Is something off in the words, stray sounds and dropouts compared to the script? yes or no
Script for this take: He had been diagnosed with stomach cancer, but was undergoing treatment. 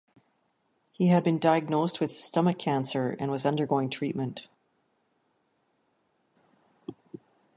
yes